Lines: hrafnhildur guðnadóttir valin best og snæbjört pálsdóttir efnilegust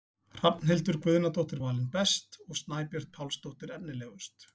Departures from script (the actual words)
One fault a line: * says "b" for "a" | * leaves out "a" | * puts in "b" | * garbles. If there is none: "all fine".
all fine